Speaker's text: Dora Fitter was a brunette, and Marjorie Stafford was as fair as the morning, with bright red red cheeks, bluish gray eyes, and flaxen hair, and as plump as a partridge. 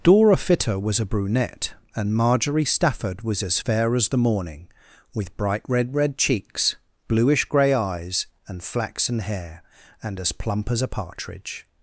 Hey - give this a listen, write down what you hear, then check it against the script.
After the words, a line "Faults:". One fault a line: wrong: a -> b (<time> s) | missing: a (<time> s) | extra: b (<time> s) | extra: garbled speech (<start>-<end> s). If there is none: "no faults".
Dora Fitter was a brunette, and Marjorie Stafford was as fair as the morning, with bright red red cheeks, bluish gray eyes, and flaxen hair, and as plump as a partridge.
Faults:
no faults